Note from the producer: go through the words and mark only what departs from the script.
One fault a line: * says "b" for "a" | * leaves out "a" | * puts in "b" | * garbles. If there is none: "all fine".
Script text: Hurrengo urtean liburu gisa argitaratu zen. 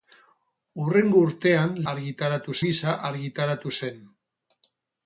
* says "argitaratu" for "liburu"